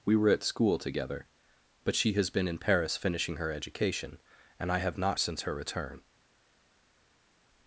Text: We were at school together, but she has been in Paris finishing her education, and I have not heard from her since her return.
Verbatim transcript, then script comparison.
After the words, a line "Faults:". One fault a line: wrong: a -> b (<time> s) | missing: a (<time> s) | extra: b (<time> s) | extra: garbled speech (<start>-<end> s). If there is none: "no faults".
We were at school together, but she has been in Paris finishing her education, and I have not since her return.
Faults:
missing: heard from her (5.2 s)